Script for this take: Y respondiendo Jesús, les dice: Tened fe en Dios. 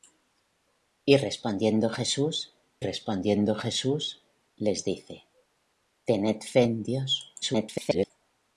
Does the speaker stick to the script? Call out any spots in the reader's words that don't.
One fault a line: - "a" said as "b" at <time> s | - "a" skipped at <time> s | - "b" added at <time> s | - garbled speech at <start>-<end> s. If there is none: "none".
- "respondiendo Jesús" added at 2.8 s
- garbled speech at 7.4-8.1 s